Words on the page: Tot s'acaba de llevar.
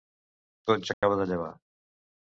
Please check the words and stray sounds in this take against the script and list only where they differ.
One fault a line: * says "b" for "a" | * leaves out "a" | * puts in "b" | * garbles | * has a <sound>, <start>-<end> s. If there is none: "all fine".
* has a dropout, 0.9-1.0 s